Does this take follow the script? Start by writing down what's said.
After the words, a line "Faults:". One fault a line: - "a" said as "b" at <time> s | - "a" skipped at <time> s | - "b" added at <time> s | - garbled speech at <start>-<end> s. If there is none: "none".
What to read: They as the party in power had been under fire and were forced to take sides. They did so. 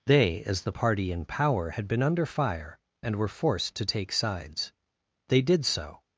They as the party in power had been under fire and were forced to take sides. They did so.
Faults:
none